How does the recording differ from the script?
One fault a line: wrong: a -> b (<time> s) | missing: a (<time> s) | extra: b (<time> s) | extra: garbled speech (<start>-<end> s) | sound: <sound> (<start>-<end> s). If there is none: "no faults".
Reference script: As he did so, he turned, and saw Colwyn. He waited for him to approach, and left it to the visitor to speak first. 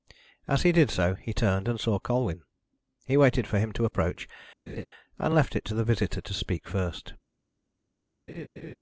sound: laugh (4.7-4.9 s)
sound: laugh (8.3-8.8 s)